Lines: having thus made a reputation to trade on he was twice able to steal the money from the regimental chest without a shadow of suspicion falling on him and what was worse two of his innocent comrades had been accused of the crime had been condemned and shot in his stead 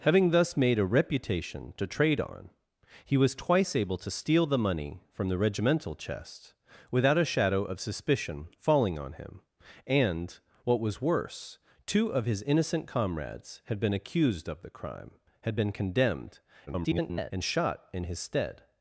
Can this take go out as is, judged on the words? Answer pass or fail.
fail